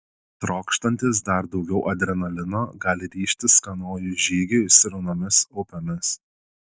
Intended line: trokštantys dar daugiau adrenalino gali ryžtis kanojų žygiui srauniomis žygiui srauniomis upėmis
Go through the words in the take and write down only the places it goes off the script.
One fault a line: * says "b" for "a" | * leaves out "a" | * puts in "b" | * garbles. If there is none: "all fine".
* leaves out "žygiui srauniomis"